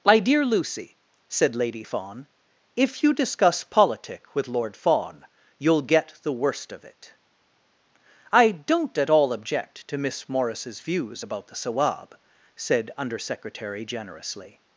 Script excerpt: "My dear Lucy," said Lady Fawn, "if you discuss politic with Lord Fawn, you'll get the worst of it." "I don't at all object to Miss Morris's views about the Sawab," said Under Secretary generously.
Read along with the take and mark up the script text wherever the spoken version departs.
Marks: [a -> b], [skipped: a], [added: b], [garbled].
"My dear Lucy," said Lady Fawn, "if you discuss politic with Lord Fawn, you'll get the worst of it." "I don't at all object to Miss Morris's views about the Sawab," said Under Secretary generously.